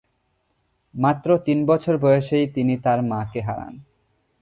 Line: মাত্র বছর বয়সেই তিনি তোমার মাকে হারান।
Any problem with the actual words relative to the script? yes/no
yes